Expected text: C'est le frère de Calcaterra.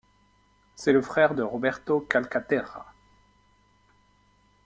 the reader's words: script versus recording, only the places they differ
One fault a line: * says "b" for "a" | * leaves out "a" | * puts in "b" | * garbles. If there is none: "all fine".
* puts in "Roberto"